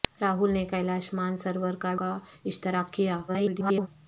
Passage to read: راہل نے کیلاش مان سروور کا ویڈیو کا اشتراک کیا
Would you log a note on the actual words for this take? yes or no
yes